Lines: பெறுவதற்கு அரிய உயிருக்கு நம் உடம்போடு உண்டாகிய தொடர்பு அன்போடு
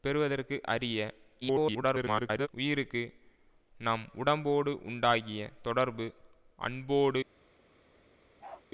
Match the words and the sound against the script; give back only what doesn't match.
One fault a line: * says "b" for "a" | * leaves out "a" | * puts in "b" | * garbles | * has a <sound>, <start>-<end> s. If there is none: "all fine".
* garbles
* has a bark, 8.4-8.7 s